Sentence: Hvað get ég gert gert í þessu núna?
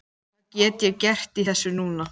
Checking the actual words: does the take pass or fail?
fail